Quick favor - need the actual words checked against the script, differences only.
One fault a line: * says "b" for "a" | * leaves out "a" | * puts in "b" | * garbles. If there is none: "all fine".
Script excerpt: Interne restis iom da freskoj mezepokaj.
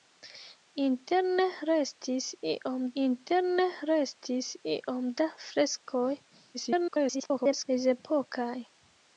* puts in "interne restis iom"
* garbles